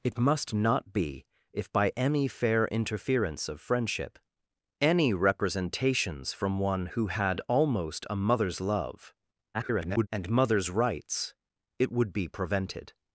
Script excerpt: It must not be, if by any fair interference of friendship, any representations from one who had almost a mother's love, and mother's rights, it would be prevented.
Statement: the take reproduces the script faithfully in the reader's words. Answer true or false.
false